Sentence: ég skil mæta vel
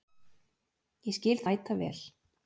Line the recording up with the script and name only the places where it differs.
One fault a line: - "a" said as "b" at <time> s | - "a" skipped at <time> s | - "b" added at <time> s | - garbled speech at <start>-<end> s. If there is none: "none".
none